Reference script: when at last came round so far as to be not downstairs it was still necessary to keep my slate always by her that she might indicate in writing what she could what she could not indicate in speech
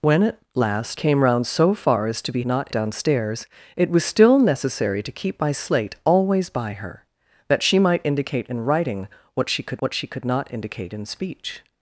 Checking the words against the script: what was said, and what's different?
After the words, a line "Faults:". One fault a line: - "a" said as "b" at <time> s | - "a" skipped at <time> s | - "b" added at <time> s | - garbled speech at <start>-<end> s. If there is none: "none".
when at last came round so far as to be not downstairs it was still necessary to keep my slate always by her that she might indicate in writing what she could what she could not indicate in speech
Faults:
none